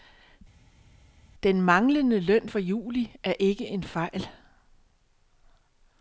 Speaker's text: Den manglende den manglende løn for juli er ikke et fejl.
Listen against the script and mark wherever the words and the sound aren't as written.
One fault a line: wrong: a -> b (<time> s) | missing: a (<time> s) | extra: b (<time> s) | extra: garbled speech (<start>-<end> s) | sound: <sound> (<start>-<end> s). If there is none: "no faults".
missing: den manglende (2.2 s)
wrong: et -> en (3.7 s)